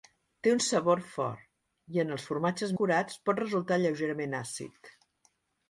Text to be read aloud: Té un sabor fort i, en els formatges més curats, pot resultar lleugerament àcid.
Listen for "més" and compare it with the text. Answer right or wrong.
wrong